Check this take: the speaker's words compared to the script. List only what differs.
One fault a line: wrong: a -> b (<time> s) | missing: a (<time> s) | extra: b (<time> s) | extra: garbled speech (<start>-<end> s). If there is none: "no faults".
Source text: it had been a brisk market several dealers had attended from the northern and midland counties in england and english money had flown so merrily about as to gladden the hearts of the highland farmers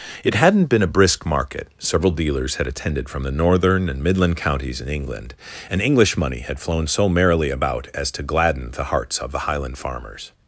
wrong: had -> hadn't (0.3 s)